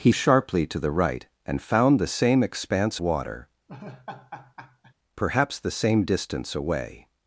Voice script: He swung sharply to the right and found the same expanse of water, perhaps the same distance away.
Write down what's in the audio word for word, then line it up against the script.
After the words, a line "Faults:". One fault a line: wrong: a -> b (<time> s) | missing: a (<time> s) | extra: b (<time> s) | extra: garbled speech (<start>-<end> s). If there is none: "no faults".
He sharply to the right and found the same expanse water, perhaps the same distance away.
Faults:
missing: swung (0.1 s)
missing: of (3.0 s)